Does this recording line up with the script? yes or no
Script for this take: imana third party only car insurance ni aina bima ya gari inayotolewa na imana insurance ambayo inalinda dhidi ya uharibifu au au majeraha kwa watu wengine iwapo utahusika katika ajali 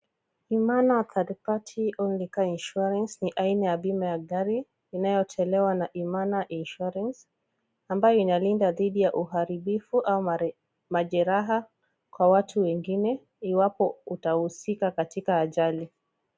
no